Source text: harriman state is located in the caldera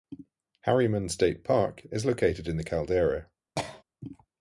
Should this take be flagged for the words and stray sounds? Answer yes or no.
yes